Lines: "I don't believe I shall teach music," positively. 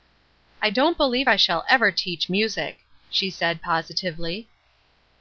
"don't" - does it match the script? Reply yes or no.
yes